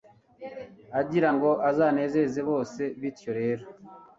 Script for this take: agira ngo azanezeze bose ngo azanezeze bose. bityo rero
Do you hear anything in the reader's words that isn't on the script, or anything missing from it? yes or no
yes